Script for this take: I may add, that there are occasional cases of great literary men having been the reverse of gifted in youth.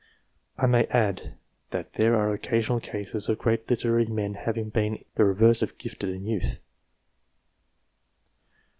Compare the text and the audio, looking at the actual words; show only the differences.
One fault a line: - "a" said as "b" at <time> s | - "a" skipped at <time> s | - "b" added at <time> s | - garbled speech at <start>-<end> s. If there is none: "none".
none